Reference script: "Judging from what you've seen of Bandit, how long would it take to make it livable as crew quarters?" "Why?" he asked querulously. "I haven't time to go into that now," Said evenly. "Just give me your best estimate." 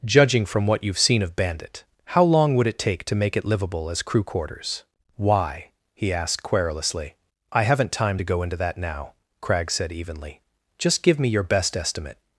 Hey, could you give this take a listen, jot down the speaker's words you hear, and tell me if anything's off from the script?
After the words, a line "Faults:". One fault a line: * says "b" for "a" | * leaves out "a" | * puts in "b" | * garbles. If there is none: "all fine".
"Judging from what you've seen of Bandit, how long would it take to make it livable as crew quarters?" "Why?" he asked querulously. "I haven't time to go into that now," Crag said evenly. "Just give me your best estimate."
Faults:
* puts in "Crag"